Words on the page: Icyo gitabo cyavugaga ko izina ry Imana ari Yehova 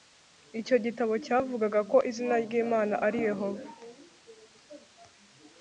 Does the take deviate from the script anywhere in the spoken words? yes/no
no